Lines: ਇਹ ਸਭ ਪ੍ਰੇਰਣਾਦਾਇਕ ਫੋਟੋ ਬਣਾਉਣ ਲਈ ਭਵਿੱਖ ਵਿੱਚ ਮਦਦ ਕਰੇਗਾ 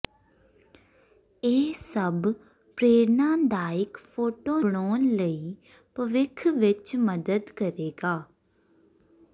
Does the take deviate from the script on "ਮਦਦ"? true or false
false